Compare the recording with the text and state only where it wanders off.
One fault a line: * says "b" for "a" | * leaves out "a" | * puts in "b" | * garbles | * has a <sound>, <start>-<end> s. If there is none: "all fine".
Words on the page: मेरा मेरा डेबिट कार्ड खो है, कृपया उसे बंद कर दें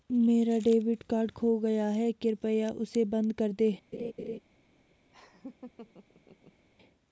* leaves out "मेरा"
* puts in "गया"
* has a laugh, 3.9-4.4 s
* has a laugh, 5.1-6.7 s